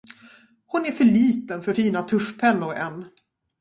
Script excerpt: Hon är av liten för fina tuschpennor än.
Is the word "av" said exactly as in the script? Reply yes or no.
no